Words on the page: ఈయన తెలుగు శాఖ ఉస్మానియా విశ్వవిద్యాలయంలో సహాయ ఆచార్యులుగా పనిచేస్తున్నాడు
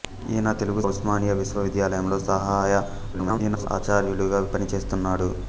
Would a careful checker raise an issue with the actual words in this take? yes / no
yes